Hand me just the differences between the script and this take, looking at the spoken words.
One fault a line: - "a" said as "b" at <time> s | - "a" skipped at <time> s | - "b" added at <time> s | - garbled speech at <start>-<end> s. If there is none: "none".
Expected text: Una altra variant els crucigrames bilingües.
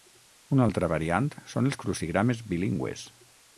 - "són" added at 1.5 s